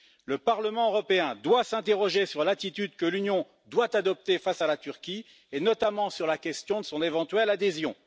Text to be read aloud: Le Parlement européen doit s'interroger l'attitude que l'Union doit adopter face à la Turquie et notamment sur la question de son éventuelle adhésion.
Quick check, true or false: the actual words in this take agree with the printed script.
false